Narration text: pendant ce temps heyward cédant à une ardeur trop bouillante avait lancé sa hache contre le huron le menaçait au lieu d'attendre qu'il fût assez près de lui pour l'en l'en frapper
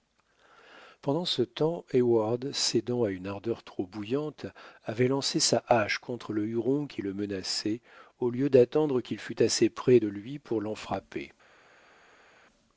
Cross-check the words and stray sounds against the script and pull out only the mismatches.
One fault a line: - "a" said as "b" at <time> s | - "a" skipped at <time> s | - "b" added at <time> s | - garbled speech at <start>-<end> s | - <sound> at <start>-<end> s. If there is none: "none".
- "qui" added at 6.9 s
- "l'en" skipped at 10.8 s